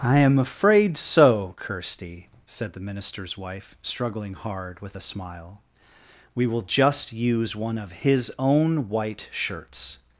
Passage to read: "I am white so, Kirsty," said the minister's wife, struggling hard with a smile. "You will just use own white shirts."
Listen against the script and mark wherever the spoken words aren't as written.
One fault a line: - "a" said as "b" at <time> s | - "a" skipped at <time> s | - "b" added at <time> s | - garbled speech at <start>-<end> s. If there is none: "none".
- "white" said as "afraid" at 0.4 s
- "You" said as "We" at 6.3 s
- "one of his" added at 7.5 s